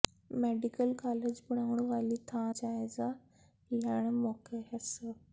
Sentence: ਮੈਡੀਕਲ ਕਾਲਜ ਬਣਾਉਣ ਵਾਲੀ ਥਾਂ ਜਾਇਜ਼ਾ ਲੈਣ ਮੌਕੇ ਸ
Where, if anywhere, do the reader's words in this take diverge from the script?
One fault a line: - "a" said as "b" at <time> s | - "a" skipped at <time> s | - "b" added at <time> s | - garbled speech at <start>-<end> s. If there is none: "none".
none